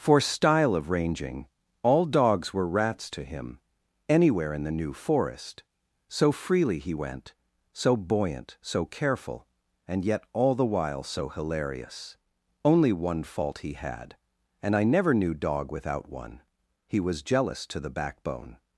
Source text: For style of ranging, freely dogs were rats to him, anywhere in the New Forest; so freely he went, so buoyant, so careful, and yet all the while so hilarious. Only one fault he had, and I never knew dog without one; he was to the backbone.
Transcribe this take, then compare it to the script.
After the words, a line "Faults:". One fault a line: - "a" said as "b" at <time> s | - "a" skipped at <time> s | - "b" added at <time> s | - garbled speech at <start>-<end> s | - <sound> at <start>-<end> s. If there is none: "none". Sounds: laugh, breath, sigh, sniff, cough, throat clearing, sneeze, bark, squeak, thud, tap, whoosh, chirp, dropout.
For style of ranging, all dogs were rats to him, anywhere in the New Forest; so freely he went, so buoyant, so careful, and yet all the while so hilarious. Only one fault he had, and I never knew dog without one; he was jealous to the backbone.
Faults:
- "freely" said as "all" at 1.8 s
- "jealous" added at 17.3 s